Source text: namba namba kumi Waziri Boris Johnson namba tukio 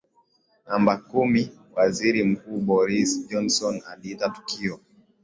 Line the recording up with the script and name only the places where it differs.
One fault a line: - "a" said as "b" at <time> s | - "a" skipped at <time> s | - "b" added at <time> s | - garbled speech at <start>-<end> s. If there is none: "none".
- "namba" skipped at 1.0 s
- "Mkuu" added at 2.2 s
- "namba" said as "aliita" at 3.9 s